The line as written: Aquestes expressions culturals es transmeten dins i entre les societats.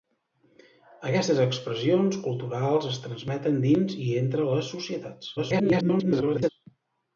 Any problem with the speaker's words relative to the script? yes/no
yes